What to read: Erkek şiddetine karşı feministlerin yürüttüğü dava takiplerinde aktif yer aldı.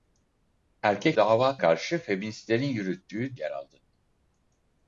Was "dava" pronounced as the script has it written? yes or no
no